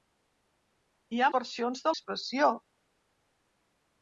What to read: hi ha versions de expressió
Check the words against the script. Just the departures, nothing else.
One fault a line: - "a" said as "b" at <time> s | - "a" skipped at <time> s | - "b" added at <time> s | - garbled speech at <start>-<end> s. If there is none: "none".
none